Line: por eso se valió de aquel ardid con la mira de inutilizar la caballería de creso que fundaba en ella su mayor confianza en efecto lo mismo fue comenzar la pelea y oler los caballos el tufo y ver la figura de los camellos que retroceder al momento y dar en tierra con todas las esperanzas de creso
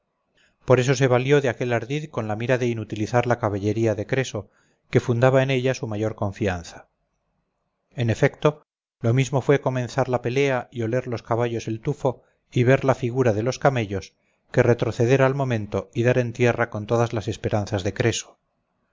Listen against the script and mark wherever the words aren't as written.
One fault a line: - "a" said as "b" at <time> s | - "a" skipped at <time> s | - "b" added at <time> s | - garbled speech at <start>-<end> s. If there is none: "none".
none